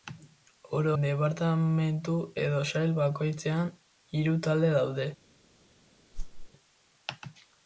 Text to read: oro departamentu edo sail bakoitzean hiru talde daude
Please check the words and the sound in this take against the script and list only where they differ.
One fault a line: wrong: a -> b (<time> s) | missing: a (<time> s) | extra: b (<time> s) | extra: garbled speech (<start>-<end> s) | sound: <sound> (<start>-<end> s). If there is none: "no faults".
sound: whoosh (6.1-6.5 s)